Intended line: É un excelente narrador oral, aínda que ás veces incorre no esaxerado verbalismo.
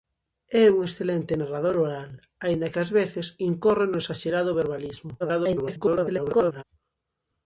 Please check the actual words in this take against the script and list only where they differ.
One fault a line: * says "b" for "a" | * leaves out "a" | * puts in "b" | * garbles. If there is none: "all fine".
* garbles